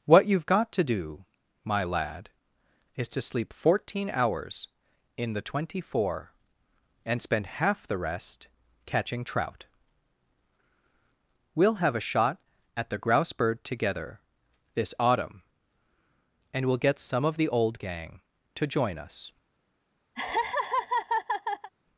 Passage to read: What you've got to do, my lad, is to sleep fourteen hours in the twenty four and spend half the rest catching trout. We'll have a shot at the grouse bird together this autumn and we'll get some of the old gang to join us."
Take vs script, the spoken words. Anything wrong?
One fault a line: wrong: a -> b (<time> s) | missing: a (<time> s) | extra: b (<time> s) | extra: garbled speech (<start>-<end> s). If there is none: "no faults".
no faults